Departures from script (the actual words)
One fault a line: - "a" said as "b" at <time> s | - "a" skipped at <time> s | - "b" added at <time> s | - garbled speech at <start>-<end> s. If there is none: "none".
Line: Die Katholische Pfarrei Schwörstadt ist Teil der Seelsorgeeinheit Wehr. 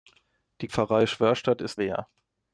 - "Katholische" skipped at 0.7 s
- "Teil der Seelsorgeeinheit" skipped at 1.8 s